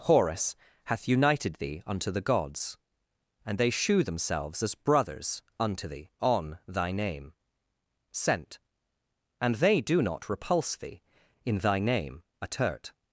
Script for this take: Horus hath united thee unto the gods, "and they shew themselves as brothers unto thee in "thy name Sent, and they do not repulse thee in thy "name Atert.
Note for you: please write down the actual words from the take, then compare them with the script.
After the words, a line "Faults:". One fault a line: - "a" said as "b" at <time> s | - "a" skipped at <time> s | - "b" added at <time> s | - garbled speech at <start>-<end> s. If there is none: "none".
Horus hath united thee unto the gods, "and they shew themselves as brothers unto thee on "thy name Sent, and they do not repulse thee in thy "name Atert.
Faults:
- "in" said as "on" at 6.2 s